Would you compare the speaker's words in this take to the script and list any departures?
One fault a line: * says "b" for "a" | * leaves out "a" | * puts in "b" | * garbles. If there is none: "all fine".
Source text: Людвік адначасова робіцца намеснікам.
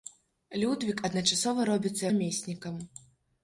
all fine